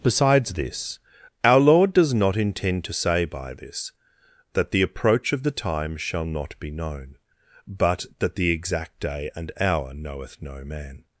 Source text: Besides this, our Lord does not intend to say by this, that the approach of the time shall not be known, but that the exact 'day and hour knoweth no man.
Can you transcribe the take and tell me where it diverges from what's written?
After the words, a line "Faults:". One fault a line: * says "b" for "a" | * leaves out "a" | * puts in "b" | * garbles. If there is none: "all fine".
Besides this, our Lord does not intend to say by this, that the approach of the time shall not be known, but that the exact 'day and hour knoweth no man.
Faults:
all fine